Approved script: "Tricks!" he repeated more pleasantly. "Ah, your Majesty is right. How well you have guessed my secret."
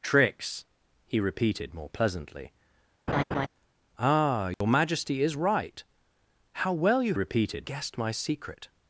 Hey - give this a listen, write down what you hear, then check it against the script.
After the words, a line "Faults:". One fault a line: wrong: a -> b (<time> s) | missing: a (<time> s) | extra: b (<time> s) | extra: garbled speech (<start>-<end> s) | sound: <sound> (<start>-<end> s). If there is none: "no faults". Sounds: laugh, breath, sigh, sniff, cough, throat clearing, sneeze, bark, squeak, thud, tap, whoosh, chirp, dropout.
"Tricks!" he repeated more pleasantly. "Ah, your Majesty is right. How well you repeated guessed my secret."
Faults:
sound: laugh (3.1-3.5 s)
sound: dropout (4.5-4.6 s)
wrong: have -> repeated (7.1 s)